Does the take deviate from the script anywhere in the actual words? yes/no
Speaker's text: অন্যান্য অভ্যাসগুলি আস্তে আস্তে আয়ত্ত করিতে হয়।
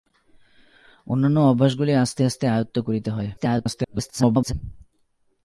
yes